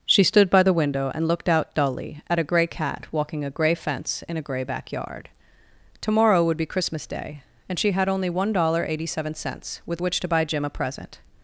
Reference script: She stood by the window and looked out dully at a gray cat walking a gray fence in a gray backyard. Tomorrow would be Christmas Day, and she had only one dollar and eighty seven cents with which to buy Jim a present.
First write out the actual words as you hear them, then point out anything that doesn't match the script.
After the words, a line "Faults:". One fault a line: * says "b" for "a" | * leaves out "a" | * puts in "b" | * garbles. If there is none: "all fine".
She stood by the window and looked out dully at a gray cat walking a gray fence in a gray backyard. Tomorrow would be Christmas Day, and she had only one dollar and eighty seven cents with which to buy Jim a present.
Faults:
all fine